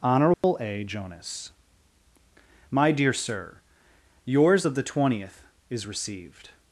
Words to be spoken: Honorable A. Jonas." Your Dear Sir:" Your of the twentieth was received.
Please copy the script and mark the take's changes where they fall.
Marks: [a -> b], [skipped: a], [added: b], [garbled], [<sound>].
Honorable [dropout] A. Jonas." [Your -> My] Dear Sir:" [Your -> Yours] of the twentieth [was -> is] received.